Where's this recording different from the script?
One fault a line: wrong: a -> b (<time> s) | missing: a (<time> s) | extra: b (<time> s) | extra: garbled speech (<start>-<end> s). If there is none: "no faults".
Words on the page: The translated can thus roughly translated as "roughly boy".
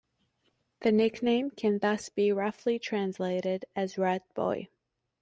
wrong: translated -> nickname (0.9 s)
extra: be (2.1 s)
wrong: roughly -> rat (4.0 s)